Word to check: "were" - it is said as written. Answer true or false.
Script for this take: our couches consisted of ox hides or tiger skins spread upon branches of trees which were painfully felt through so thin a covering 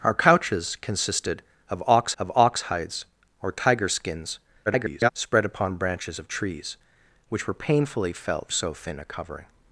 true